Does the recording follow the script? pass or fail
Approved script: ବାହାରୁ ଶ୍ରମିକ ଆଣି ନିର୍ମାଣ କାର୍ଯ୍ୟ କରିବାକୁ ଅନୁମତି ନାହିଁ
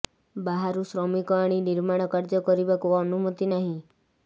pass